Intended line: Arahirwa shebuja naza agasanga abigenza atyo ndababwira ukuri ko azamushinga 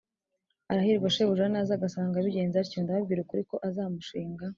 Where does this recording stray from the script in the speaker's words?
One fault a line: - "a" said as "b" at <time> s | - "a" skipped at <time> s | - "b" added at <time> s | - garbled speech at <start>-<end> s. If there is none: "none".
none